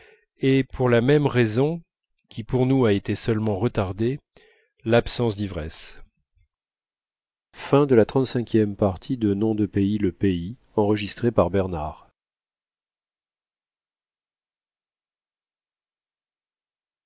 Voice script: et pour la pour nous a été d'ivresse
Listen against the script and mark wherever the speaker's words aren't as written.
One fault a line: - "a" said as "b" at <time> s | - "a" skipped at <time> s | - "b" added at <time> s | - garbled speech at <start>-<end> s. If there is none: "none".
- "même raison qui" added at 1.0 s
- "seulement retardée l'absence" added at 3.2 s